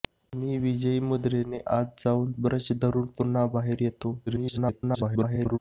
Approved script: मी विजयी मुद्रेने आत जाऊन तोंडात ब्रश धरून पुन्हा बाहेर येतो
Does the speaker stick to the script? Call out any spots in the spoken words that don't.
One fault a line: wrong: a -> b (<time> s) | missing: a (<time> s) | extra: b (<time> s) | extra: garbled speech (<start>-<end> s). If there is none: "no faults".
missing: तोंडात (2.3 s)
extra: garbled speech (4.3-5.6 s)